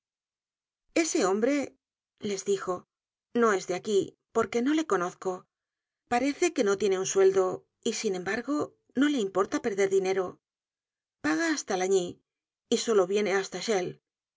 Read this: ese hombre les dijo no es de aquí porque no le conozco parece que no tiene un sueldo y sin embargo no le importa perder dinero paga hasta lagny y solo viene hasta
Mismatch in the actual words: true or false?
false